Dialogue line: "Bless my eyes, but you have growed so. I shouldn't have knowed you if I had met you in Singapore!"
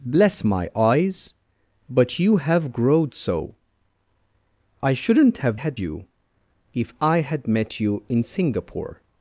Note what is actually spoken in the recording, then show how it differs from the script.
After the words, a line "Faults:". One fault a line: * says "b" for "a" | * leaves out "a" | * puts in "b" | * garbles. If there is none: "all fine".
"Bless my eyes, but you have growed so. I shouldn't have had you if I had met you in Singapore!"
Faults:
* says "had" for "knowed"